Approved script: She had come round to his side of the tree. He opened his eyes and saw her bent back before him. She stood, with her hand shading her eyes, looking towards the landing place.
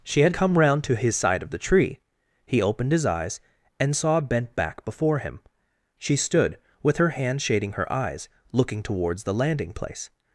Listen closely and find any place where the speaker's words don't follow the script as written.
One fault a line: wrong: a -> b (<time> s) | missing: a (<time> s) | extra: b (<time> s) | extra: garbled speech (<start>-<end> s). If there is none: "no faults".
missing: her (4.2 s)